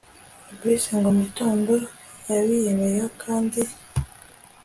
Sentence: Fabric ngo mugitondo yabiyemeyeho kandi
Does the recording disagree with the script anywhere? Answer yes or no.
no